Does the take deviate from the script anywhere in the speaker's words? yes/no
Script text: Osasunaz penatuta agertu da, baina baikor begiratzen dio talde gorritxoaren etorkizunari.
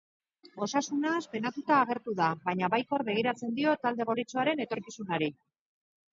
no